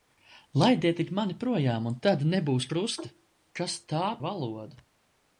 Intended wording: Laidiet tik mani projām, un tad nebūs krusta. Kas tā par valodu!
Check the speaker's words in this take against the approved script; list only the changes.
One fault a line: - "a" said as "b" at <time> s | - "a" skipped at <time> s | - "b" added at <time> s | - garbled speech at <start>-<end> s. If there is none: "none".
- "par" skipped at 4.0 s